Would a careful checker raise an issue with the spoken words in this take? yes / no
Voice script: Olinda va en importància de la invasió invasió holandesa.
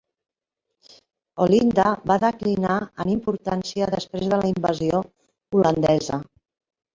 yes